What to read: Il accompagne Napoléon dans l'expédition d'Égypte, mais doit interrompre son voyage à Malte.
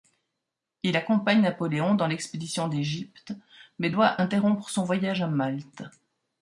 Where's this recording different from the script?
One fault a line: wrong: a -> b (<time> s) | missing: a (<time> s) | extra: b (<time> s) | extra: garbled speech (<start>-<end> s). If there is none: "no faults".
no faults